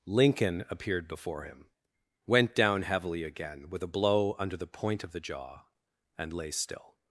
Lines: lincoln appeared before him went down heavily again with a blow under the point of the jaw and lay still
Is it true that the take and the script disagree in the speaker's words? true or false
false